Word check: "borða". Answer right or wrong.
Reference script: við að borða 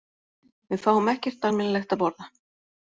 right